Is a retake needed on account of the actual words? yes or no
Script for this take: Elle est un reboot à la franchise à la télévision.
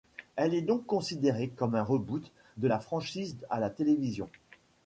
yes